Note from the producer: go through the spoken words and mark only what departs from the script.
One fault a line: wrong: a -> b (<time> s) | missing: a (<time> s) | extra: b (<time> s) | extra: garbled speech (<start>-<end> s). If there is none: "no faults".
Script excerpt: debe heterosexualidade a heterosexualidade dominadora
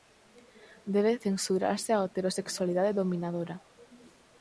wrong: heterosexualidade -> censurarse (1.2 s)